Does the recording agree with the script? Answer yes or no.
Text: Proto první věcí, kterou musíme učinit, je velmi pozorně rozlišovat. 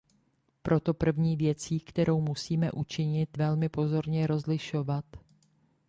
no